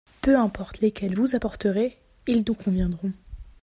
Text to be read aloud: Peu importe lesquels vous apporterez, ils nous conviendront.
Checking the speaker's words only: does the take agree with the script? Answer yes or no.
yes